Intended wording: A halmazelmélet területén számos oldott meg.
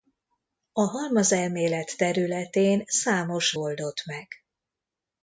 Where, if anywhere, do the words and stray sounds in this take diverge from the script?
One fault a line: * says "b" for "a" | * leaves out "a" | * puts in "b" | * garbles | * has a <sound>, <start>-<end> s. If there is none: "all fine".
all fine